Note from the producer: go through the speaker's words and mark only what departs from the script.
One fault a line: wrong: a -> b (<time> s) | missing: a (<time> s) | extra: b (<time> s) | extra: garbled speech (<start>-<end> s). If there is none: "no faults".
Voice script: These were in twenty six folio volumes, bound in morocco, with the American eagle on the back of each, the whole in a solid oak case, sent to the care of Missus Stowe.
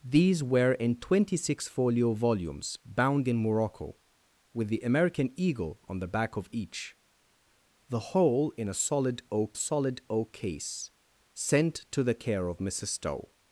extra: solid oak (9.5 s)